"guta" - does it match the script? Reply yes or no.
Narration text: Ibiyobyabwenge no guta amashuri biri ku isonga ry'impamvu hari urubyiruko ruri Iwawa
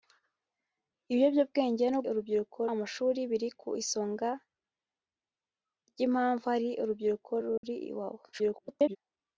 no